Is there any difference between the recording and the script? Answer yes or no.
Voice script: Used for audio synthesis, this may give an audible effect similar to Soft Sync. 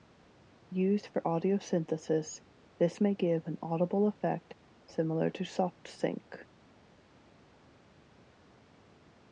no